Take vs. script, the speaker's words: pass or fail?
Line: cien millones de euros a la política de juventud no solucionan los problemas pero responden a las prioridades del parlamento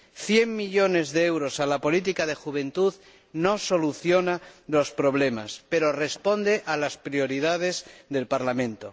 pass